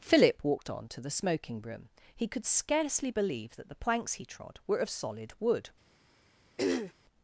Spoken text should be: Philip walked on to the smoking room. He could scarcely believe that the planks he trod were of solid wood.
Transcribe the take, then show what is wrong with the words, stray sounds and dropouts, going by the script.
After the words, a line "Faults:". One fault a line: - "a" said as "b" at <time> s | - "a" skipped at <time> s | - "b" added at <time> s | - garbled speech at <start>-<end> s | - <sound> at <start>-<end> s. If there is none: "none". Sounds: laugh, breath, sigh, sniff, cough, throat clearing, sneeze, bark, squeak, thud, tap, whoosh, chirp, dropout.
Philip walked on to the smoking room. He could scarcely believe that the planks he trod were of solid wood.
Faults:
- throat clearing at 6.6-6.9 s